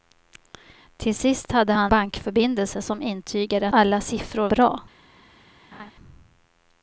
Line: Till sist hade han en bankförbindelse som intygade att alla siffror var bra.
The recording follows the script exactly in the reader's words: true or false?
false